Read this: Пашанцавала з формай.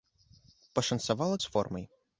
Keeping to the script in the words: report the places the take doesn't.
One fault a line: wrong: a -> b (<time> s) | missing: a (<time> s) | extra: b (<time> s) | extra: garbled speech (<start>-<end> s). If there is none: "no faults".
no faults